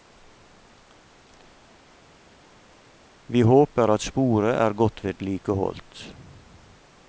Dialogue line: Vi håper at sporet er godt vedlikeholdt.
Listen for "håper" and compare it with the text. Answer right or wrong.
right